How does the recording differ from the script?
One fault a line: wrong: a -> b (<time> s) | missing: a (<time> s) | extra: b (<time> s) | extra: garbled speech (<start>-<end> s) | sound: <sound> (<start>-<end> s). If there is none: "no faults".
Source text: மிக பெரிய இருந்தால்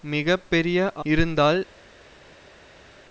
no faults